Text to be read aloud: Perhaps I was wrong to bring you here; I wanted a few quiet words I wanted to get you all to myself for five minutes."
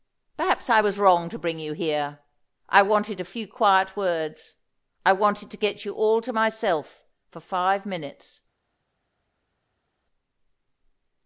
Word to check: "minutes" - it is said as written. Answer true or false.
true